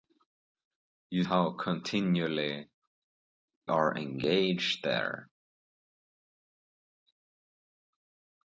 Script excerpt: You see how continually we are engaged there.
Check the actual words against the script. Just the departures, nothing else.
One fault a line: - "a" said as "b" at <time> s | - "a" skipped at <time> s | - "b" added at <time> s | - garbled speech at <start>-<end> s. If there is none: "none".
- "see" skipped at 1.2 s
- "we" skipped at 2.7 s